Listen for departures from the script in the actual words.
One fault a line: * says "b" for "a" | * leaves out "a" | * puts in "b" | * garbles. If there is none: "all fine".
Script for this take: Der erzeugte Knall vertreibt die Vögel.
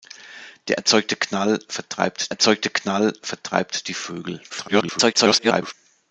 * puts in "erzeugte Knall vertreibt"
* garbles